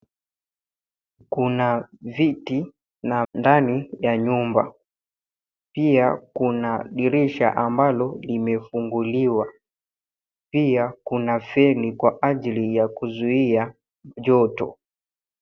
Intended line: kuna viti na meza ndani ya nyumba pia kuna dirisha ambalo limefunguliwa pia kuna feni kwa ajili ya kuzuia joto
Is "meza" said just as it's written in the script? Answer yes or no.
no